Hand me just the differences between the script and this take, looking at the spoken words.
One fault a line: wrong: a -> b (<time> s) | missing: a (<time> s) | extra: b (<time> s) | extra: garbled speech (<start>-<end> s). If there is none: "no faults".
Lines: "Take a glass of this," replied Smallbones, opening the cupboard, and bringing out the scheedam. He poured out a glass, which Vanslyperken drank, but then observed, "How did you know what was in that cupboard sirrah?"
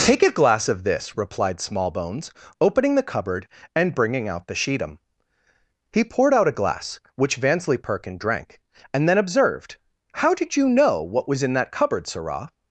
wrong: but -> and (8.9 s)